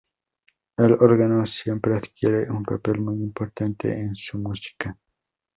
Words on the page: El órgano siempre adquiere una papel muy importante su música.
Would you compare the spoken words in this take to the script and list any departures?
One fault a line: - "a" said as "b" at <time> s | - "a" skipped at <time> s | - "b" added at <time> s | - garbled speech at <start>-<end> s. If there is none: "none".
- "una" said as "un" at 2.5 s
- "en" added at 3.9 s